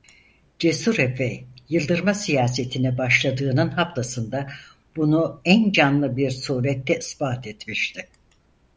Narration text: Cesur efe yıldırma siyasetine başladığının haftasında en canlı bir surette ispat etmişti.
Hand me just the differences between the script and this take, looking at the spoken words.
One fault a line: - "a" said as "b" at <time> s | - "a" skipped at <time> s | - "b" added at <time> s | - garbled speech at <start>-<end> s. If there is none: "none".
- "bunu" added at 5.0 s